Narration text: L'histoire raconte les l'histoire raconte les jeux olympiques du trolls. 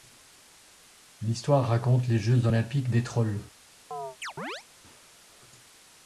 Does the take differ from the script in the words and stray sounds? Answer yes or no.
yes